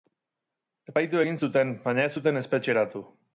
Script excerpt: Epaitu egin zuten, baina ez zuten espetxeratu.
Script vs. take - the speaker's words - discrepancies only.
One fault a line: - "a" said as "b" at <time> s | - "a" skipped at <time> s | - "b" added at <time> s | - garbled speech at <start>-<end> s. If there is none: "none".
none